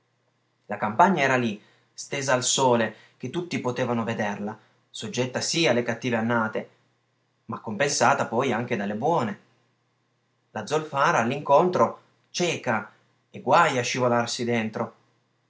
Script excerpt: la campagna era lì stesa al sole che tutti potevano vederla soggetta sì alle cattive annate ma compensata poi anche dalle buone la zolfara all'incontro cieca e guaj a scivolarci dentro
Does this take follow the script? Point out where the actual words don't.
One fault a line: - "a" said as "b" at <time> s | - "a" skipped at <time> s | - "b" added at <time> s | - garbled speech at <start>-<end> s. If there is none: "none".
none